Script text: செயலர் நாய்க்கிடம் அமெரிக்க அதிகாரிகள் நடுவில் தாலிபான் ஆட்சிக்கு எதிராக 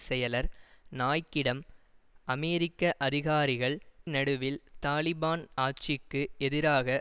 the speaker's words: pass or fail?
pass